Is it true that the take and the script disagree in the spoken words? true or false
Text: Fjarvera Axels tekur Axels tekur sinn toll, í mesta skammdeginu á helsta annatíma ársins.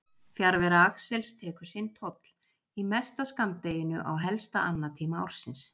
true